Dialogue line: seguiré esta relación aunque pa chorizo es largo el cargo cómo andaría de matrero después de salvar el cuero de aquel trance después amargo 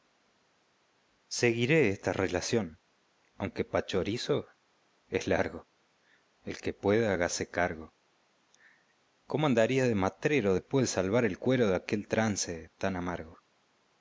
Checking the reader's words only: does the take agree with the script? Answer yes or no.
no